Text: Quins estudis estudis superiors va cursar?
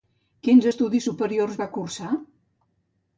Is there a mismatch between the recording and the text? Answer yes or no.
yes